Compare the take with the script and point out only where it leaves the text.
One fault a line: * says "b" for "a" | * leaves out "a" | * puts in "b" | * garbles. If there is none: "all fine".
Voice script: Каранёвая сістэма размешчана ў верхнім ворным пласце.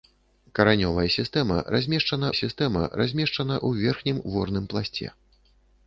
* puts in "сістэма размешчана"